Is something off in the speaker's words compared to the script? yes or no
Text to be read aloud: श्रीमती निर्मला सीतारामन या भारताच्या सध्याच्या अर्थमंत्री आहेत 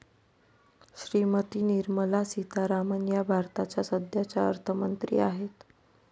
no